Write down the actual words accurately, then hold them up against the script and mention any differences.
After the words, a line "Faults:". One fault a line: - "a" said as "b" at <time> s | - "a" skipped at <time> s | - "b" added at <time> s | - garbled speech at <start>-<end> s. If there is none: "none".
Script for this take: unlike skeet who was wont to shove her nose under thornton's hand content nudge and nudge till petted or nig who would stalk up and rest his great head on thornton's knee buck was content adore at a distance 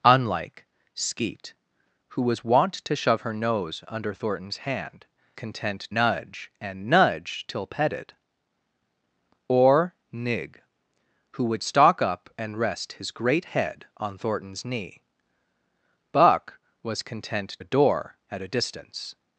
unlike skeet who was wont to shove her nose under thornton's hand content nudge and nudge till petted or nig who would stalk up and rest his great head on thornton's knee buck was content adore at a distance
Faults:
none